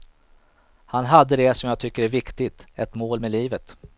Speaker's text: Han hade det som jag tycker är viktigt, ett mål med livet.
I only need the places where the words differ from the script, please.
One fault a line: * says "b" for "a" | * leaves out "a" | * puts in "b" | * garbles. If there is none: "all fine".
all fine